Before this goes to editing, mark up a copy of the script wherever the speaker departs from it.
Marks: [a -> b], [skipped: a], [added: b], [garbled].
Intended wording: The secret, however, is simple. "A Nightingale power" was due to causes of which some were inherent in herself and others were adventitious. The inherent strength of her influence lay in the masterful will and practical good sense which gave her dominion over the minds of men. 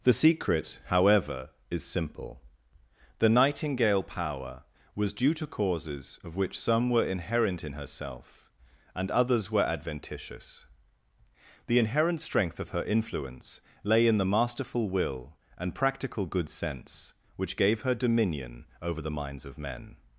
The secret, however, is simple. ["A -> The] Nightingale power" was due to causes of which some were inherent in herself and others were adventitious. The inherent strength of her influence lay in the masterful will and practical good sense which gave her dominion over the minds of men.